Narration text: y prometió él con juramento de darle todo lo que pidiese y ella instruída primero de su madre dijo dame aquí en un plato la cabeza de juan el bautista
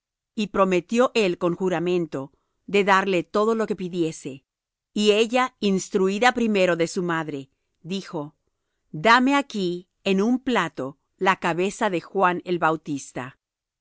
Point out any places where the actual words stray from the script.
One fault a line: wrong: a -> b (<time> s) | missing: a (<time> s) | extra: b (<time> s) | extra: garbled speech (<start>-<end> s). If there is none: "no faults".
no faults